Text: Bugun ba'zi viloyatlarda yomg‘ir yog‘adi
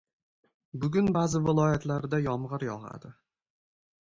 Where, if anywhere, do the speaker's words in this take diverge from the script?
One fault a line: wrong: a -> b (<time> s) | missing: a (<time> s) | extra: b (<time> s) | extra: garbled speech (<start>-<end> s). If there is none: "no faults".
no faults